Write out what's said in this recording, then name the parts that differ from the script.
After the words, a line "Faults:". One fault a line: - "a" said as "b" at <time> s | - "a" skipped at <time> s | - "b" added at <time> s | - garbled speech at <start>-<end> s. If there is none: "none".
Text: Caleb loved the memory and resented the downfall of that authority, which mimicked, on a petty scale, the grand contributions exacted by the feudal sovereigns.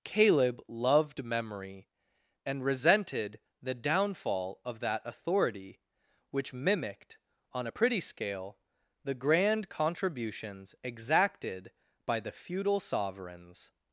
Caleb loved memory and resented the downfall of that authority, which mimicked, on a pretty scale, the grand contributions exacted by the feudal sovereigns.
Faults:
- "the" skipped at 1.2 s
- "petty" said as "pretty" at 7.7 s